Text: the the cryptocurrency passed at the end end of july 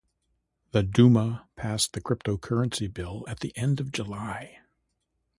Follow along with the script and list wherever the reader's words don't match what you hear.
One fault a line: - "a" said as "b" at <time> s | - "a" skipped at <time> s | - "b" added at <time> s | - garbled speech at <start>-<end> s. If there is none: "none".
- "duma passed" added at 0.8 s
- "passed" said as "bill" at 2.9 s
- "end" skipped at 3.8 s